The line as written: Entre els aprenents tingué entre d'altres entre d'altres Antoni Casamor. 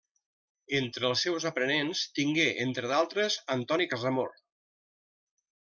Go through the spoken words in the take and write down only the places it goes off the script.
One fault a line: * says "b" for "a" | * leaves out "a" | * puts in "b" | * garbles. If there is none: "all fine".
* puts in "seus"
* leaves out "entre d'altres"